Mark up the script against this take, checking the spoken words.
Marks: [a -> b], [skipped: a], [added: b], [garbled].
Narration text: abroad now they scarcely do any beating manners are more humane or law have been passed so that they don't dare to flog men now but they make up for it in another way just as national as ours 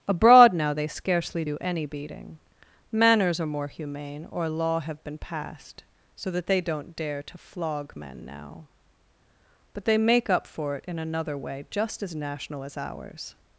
abroad now they scarcely do any beating manners are more humane or law have been passed so that they don't dare to flog men now but they make up for it in another way just as national as ours